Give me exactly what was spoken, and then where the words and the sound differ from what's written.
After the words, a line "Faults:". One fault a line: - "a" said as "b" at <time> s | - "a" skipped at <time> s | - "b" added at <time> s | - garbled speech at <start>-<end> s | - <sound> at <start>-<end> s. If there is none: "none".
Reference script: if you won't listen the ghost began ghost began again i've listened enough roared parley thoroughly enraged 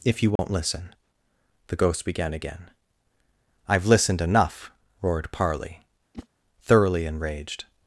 if you won't listen the ghost began again i've listened enough roared parley thoroughly enraged
Faults:
- dropout at 0.4-0.4 s
- "ghost began" skipped at 2.3 s
- whoosh at 6.1-6.3 s